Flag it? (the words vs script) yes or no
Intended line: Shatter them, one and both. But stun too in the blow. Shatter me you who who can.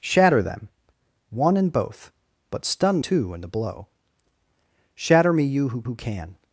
no